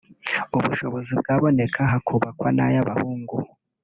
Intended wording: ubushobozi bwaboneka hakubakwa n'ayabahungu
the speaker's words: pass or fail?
pass